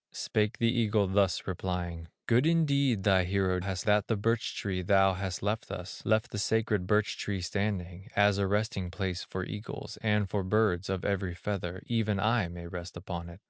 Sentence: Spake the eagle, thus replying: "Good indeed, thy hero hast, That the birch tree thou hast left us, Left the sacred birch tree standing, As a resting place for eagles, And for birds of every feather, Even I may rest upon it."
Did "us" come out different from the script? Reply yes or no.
no